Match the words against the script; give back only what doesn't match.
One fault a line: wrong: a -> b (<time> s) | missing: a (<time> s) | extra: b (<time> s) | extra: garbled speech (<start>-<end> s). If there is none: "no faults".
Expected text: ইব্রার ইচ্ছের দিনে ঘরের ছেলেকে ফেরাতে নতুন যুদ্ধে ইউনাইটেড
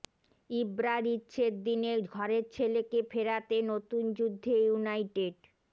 no faults